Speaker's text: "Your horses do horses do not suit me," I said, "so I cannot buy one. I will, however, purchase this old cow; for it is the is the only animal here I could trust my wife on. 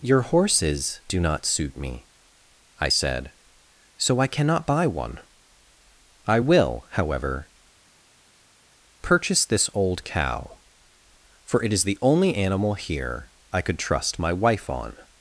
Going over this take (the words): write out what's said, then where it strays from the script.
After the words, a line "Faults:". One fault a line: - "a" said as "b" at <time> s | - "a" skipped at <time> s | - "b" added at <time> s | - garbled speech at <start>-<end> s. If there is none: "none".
"Your horses do not suit me," I said, "so I cannot buy one. I will, however, purchase this old cow; for it is the only animal here I could trust my wife on.
Faults:
- "horses do" skipped at 1.2 s
- "is the" skipped at 12.0 s